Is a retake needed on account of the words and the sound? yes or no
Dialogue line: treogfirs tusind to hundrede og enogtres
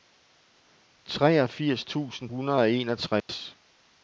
yes